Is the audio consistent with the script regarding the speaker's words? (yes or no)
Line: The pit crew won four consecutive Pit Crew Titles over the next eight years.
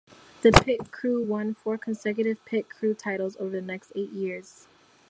yes